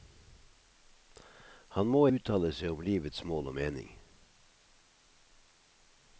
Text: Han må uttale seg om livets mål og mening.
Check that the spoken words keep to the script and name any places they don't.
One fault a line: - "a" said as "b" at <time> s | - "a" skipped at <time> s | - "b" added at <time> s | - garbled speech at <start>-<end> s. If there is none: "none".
none